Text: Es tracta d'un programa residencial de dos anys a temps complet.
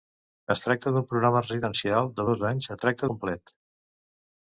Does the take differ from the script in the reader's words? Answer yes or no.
yes